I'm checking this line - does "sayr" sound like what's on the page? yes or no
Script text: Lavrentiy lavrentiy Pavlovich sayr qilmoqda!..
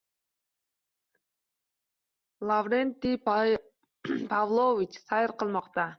yes